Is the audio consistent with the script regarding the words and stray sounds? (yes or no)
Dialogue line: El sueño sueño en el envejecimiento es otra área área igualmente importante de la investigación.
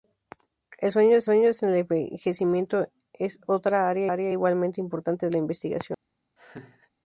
no